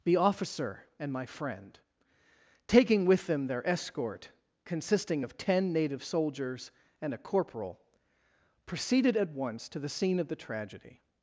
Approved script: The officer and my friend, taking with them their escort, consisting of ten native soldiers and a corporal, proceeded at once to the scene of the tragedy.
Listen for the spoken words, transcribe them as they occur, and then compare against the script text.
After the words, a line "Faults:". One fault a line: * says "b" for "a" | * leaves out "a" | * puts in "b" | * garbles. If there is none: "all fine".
The officer and my friend, taking with them their escort, consisting of ten native soldiers and a corporal, proceeded at once to the scene of the tragedy.
Faults:
all fine